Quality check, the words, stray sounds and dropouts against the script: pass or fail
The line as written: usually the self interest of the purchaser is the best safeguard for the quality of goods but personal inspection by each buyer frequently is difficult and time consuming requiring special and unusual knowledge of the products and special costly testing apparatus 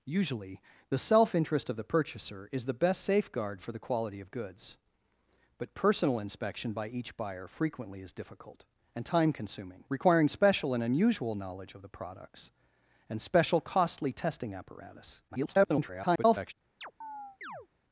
fail